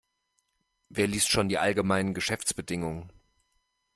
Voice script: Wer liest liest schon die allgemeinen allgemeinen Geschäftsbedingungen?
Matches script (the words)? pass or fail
fail